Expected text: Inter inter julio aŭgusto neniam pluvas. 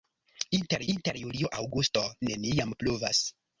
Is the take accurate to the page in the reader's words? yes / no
yes